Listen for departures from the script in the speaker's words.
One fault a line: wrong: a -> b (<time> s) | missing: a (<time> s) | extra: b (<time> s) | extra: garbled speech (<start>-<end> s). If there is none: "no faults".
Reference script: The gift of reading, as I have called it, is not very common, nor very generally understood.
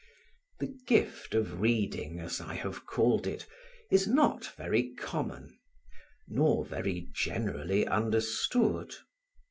no faults